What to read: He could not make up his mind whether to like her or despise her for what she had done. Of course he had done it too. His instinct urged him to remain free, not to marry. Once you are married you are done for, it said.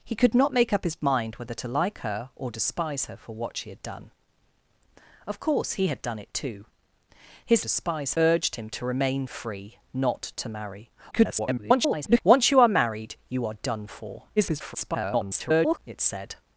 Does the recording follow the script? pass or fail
fail